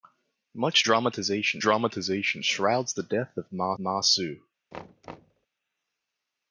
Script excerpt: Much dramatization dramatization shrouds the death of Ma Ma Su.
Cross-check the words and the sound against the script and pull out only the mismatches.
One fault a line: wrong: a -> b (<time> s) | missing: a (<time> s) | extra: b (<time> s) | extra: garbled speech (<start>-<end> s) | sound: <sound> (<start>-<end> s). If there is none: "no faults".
sound: thud (4.7-5.5 s)